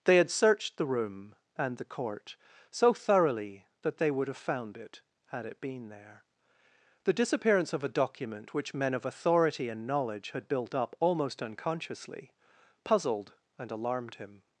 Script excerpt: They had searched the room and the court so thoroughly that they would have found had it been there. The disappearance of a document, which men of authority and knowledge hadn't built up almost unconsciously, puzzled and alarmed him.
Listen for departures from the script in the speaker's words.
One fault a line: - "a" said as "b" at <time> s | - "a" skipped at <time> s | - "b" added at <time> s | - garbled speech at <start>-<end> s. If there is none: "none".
- "it" added at 4.8 s
- "hadn't" said as "had" at 10.3 s